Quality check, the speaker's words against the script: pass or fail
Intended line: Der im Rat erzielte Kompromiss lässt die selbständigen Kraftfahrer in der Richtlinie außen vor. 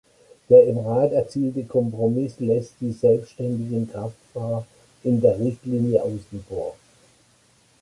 pass